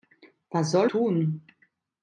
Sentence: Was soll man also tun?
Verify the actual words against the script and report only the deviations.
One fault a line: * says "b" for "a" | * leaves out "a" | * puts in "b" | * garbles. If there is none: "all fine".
* leaves out "man also"